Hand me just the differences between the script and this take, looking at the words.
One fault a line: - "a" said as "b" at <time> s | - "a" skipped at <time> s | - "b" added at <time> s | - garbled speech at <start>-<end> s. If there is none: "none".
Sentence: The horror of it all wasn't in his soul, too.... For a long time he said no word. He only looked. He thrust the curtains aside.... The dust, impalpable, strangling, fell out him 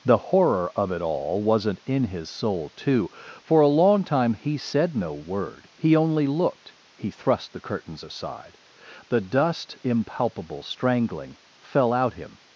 none